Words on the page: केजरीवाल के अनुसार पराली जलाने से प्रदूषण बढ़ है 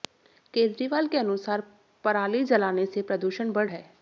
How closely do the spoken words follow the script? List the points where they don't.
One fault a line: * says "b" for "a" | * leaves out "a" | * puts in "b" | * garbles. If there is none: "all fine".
all fine